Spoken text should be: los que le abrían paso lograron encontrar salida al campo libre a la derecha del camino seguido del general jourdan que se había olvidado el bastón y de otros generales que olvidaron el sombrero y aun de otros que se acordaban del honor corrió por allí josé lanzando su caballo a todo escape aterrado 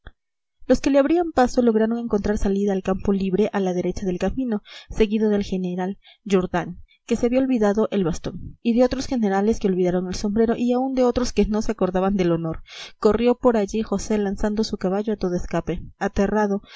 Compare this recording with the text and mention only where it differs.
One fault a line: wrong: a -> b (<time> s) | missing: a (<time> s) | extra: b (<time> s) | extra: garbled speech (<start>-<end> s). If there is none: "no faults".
extra: no (11.5 s)